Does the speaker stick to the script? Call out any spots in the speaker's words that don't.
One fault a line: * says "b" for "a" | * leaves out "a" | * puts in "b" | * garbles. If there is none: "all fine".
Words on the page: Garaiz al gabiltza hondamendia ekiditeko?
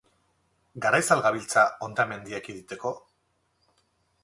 all fine